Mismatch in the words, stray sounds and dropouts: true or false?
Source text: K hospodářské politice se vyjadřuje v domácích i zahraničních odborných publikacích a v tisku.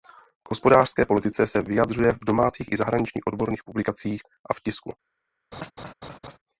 true